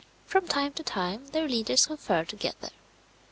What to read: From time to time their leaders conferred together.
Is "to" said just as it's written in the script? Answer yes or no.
yes